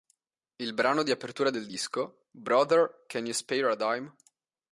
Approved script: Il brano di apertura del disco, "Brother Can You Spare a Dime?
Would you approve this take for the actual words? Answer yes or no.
yes